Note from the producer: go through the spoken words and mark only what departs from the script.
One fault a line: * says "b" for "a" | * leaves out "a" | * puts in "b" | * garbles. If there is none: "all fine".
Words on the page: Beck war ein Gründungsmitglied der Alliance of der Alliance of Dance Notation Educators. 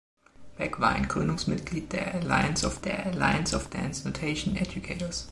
all fine